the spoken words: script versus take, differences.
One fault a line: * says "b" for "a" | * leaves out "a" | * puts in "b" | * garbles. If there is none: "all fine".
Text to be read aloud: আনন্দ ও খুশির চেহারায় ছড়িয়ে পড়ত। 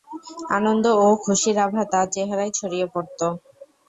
* puts in "আভা তার"